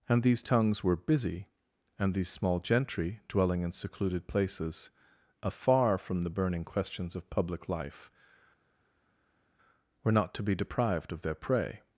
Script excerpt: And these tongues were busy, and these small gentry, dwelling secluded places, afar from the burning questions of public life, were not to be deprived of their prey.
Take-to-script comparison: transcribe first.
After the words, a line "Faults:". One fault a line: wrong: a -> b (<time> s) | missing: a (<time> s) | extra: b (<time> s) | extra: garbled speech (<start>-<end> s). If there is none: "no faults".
And these tongues were busy, and these small gentry, dwelling in secluded places, afar from the burning questions of public life, were not to be deprived of their prey.
Faults:
extra: in (3.6 s)